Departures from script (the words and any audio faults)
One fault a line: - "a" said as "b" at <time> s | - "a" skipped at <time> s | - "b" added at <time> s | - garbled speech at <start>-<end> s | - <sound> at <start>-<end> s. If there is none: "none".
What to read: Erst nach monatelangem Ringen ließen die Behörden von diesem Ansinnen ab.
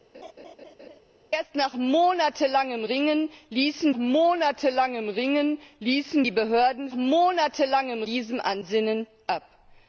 - laugh at 0.1-1.0 s
- "monatelangem Ringen ließen" added at 3.9 s
- "von" said as "monatelangem" at 6.9 s